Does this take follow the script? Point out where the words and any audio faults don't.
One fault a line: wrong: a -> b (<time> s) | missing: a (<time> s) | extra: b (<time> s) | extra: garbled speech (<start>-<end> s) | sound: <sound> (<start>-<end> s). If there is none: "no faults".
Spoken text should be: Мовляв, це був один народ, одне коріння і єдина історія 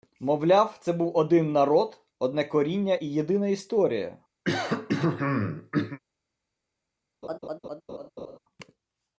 sound: throat clearing (4.4-6.0 s)
sound: laugh (7.2-8.4 s)